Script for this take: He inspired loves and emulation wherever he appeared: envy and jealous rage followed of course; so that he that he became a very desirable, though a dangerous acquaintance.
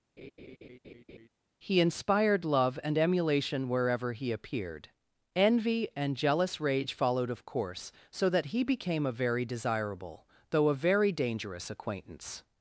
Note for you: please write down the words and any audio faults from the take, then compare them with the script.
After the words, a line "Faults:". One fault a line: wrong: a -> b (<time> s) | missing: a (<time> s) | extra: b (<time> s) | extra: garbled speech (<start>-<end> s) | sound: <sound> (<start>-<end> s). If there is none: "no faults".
He inspired love and emulation wherever he appeared: envy and jealous rage followed of course; so that he became a very desirable, though a very dangerous acquaintance.
Faults:
sound: laugh (0.2-1.3 s)
wrong: loves -> love (2.4 s)
missing: that he (8.6 s)
extra: very (10.8 s)